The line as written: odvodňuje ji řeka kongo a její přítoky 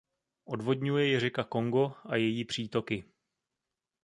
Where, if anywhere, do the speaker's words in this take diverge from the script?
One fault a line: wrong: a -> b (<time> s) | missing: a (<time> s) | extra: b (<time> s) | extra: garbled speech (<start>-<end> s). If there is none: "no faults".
no faults